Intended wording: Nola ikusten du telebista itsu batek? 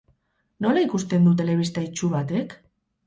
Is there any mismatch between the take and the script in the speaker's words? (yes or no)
no